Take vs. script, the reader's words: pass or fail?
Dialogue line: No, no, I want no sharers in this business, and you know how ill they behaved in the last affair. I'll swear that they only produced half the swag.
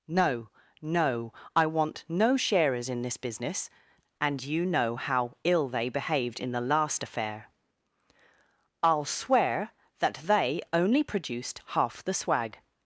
pass